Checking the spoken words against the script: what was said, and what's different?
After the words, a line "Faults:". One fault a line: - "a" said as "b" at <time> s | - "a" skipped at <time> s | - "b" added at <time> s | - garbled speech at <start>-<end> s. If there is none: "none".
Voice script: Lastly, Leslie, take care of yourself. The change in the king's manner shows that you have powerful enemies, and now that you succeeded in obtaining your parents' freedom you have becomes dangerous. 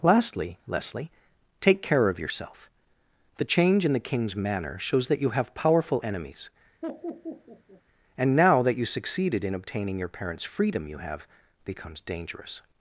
Lastly, Leslie, take care of yourself. The change in the king's manner shows that you have powerful enemies, and now that you succeeded in obtaining your parents' freedom you have becomes dangerous.
Faults:
none